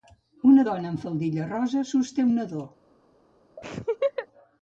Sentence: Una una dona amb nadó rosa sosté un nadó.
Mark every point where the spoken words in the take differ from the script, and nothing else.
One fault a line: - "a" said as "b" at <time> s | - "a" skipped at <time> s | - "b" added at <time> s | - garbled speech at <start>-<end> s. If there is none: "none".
- "una" skipped at 0.6 s
- "nadó" said as "faldilla" at 1.0 s